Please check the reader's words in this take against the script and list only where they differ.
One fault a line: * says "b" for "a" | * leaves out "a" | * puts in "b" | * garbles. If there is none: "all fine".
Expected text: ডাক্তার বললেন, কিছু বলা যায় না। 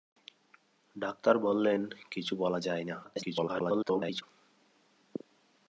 * garbles